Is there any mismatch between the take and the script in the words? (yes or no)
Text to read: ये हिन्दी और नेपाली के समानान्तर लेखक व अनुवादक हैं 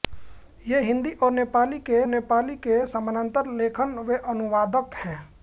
yes